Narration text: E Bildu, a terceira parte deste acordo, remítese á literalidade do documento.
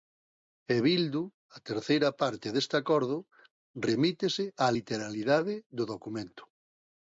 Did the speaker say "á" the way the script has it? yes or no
yes